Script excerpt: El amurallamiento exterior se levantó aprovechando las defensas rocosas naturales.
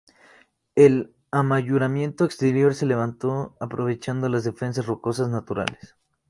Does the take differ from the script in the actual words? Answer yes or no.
no